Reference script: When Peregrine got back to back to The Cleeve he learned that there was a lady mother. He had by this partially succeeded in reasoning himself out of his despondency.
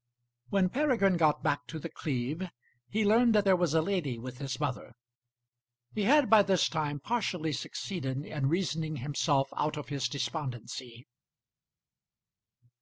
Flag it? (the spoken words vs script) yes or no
yes